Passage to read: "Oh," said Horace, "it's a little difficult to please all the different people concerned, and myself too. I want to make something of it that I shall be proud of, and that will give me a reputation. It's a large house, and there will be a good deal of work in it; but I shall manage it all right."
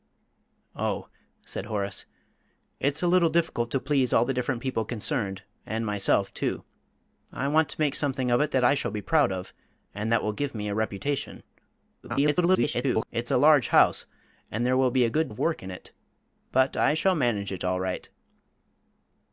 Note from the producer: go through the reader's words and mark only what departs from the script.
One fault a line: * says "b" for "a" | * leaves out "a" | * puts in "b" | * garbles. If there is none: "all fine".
* garbles
* leaves out "deal"